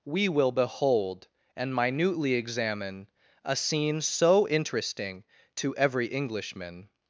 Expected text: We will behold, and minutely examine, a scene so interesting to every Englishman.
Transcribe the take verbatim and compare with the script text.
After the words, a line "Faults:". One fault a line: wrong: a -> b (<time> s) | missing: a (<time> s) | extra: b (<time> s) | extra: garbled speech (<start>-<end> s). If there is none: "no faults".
We will behold, and minutely examine, a scene so interesting to every Englishman.
Faults:
no faults